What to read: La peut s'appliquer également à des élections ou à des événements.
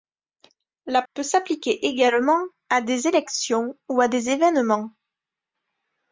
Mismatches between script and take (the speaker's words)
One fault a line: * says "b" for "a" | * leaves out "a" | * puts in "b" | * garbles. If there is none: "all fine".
all fine